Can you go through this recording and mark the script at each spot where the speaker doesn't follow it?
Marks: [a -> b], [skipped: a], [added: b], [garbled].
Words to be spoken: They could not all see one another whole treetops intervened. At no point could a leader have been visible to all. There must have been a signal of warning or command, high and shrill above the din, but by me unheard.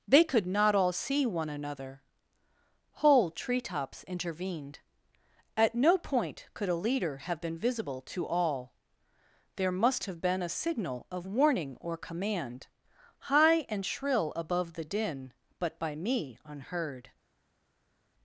They could not all see one another whole treetops intervened. At no point could a leader have been visible to all. There must have been a signal of warning or command, high and shrill above the din, but by me unheard.